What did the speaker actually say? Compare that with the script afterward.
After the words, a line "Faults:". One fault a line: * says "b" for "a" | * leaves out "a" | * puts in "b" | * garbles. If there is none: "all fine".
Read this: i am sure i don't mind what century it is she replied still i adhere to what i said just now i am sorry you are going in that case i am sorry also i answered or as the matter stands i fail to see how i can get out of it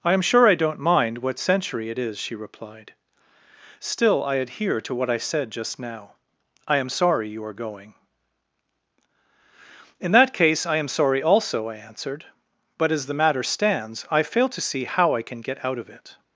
i am sure i don't mind what century it is she replied still i adhere to what i said just now i am sorry you are going in that case i am sorry also i answered but as the matter stands i fail to see how i can get out of it
Faults:
* says "but" for "or"